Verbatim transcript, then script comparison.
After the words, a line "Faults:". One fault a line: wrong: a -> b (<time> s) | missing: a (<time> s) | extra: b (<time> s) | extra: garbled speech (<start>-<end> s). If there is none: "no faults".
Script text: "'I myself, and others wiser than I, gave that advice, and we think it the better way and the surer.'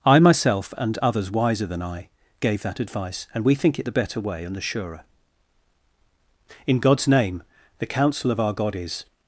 "'I myself, and others wiser than I, gave that advice, and we think it the better way and the surer.' "'In God's name, the counsel of our God is
Faults:
extra: In God's name the counsel of our God is (6.7 s)